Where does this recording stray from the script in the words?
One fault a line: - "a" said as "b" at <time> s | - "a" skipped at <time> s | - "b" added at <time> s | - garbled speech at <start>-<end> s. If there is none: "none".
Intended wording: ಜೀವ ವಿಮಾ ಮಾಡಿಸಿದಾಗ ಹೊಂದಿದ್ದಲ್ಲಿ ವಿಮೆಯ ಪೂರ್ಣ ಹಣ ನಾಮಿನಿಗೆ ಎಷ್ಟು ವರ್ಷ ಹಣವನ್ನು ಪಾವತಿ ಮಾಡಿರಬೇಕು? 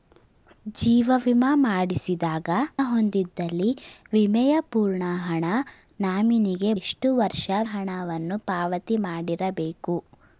none